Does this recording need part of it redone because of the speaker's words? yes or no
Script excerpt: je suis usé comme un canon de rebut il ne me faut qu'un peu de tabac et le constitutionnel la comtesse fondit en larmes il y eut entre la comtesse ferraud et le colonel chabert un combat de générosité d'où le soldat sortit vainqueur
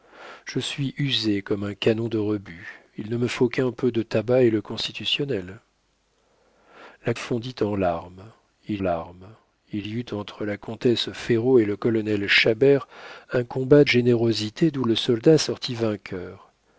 yes